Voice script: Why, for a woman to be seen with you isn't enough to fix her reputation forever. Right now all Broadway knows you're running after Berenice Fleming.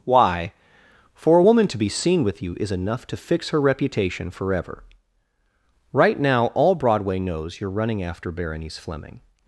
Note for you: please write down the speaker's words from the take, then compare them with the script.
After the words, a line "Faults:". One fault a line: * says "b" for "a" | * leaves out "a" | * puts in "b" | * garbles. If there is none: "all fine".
Why, for a woman to be seen with you is enough to fix her reputation forever. Right now all Broadway knows you're running after Berenice Fleming.
Faults:
* says "is" for "isn't"